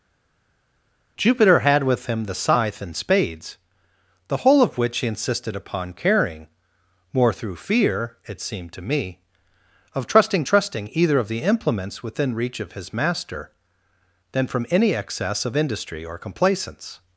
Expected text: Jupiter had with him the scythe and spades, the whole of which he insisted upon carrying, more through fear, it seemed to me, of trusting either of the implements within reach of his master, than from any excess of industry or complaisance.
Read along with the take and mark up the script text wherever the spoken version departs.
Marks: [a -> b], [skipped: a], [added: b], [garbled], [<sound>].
Jupiter had with him the scythe and spades, the whole of which he insisted upon carrying, more through fear, it seemed to me, of trusting [added: trusting] either of the implements within reach of his master, than from any excess of industry or complaisance.